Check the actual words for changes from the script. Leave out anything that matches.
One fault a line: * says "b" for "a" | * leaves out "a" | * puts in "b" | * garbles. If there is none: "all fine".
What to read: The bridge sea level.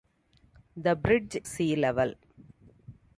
all fine